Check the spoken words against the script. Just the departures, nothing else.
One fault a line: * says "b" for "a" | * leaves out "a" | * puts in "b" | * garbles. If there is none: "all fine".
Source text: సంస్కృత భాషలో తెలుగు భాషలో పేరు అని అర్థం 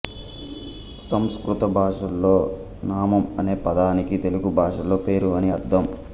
* puts in "నామం అనే పదానికి"